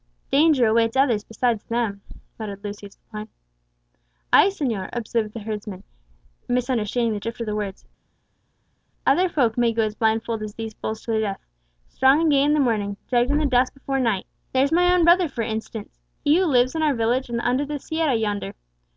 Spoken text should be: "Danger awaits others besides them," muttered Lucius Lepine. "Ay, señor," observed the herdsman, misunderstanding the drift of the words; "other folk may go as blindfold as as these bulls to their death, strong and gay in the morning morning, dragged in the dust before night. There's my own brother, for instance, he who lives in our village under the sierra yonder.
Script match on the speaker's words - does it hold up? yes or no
no